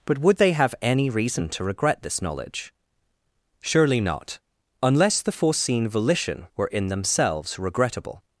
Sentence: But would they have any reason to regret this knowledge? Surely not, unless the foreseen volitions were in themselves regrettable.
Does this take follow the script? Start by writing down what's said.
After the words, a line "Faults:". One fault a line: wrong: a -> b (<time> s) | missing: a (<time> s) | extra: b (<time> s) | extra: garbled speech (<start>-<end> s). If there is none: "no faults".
But would they have any reason to regret this knowledge? Surely not, unless the foreseen volition were in themselves regrettable.
Faults:
wrong: volitions -> volition (5.9 s)